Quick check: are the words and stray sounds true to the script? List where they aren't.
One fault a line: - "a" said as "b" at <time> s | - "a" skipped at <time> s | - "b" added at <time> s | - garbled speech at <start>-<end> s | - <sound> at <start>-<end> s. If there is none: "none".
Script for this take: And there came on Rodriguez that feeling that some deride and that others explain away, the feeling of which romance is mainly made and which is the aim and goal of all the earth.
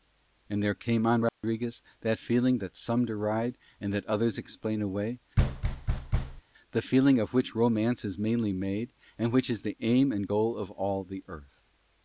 - dropout at 1.3-1.4 s
- thud at 5.4-6.4 s